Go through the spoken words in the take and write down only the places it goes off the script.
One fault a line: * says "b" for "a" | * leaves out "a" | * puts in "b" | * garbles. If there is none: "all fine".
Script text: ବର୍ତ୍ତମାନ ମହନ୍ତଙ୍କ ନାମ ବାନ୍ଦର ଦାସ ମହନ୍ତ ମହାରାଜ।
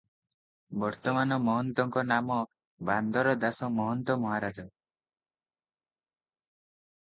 all fine